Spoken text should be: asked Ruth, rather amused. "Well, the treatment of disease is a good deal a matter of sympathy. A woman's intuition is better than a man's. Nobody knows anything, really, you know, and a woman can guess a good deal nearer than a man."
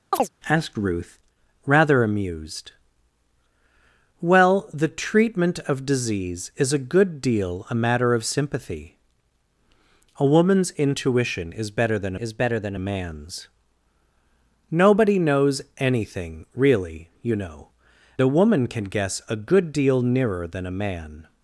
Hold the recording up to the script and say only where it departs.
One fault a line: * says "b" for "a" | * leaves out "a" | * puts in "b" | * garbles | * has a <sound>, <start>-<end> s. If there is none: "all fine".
* has a chirp, 0.1-0.3 s
* puts in "is better than"
* leaves out "and"